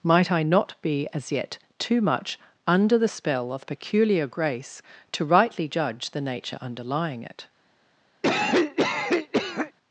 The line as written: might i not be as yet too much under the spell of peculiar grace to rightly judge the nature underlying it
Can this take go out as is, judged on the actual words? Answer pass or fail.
pass